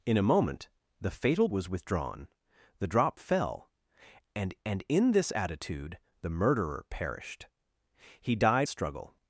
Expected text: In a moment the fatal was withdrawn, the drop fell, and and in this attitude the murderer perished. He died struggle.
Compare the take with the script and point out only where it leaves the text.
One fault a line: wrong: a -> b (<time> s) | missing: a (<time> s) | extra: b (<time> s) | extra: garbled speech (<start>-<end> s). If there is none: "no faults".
no faults